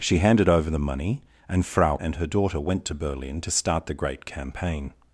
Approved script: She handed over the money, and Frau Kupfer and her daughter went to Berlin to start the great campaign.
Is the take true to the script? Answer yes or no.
no